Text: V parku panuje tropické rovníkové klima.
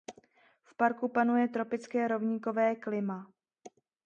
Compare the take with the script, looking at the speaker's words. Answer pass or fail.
pass